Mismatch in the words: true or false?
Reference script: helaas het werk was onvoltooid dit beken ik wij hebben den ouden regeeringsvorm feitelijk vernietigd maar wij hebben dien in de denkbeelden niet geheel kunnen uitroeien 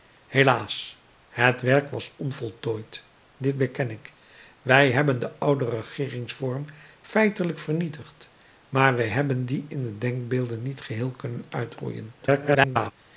true